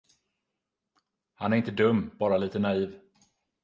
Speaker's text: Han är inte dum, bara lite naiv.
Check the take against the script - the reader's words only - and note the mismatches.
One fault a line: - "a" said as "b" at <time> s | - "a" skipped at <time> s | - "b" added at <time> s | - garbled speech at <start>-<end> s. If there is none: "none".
none